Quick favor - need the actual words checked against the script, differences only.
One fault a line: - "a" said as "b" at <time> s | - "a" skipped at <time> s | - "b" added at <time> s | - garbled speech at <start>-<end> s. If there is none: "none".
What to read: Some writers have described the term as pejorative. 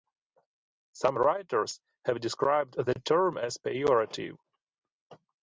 none